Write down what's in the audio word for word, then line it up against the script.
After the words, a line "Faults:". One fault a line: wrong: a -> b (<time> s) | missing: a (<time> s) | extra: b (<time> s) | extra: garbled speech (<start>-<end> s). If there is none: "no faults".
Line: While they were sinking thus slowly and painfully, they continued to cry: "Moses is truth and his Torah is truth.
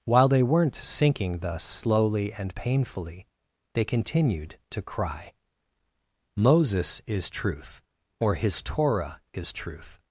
While they weren't sinking thus slowly and painfully, they continued to cry: "Moses is truth or his Torah is truth.
Faults:
wrong: were -> weren't (0.4 s)
wrong: and -> or (8.2 s)